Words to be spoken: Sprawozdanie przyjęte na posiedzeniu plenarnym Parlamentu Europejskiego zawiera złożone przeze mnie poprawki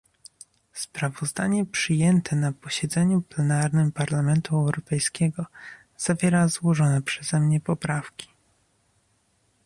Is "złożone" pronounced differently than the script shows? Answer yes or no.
no